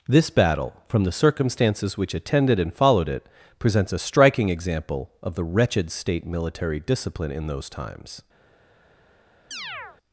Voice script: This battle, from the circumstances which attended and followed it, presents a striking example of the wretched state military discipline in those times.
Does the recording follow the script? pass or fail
pass